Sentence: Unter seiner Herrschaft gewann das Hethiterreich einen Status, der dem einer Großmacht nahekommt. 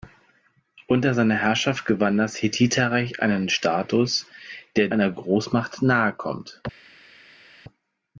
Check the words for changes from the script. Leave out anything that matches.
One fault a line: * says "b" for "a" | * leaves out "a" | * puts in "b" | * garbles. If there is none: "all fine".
* leaves out "dem"